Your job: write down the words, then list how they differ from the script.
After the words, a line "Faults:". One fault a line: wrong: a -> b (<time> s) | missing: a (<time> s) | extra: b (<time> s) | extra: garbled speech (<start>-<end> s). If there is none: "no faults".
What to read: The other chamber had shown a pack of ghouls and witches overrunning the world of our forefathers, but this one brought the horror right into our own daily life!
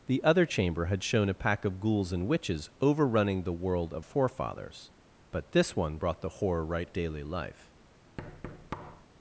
The other chamber had shown a pack of ghouls and witches overrunning the world of forefathers, but this one brought the horror right daily life!
Faults:
missing: our (4.0 s)
missing: into our own (6.9 s)